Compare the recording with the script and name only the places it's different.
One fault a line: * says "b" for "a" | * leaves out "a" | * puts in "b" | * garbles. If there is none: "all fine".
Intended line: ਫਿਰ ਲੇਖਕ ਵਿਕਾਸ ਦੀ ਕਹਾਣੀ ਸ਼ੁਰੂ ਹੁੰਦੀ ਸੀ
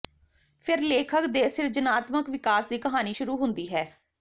* puts in "ਦੇ ਸਿਰਜਣਾਤਮਕ"
* says "ਹੈ" for "ਸੀ"